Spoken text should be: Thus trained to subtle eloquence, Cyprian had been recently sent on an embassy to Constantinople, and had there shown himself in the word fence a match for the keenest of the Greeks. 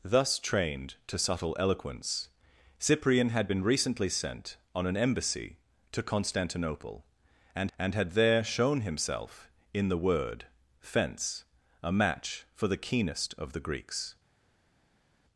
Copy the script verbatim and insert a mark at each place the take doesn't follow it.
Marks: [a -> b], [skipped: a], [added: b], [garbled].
Thus trained to subtle eloquence, Cyprian had been recently sent on an embassy to Constantinople, and [added: and] had there shown himself in the word fence a match for the keenest of the Greeks.